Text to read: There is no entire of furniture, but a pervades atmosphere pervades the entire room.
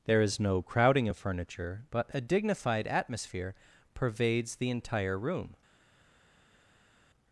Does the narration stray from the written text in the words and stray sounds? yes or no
yes